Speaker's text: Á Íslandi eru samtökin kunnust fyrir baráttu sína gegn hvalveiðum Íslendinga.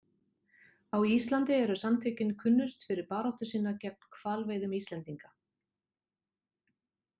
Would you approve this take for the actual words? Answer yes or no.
yes